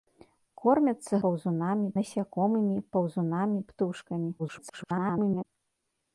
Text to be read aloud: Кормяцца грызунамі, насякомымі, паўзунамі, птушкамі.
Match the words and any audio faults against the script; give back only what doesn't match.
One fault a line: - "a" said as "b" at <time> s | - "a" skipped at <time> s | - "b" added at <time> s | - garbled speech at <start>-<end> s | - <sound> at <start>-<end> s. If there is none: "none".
- "грызунамі" said as "паўзунамі" at 1.2 s
- garbled speech at 4.4-5.4 s